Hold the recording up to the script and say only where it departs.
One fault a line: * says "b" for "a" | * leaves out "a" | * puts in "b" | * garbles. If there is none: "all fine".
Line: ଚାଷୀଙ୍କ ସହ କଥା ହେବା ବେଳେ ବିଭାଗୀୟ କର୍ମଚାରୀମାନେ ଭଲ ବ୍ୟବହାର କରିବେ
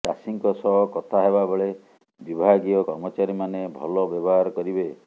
all fine